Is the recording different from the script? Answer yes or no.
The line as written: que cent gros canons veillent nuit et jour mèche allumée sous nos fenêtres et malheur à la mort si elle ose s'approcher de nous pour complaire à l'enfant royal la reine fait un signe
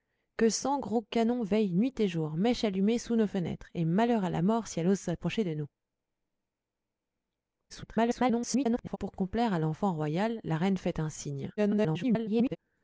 yes